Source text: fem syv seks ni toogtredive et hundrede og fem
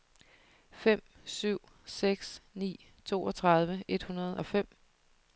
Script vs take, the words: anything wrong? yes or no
no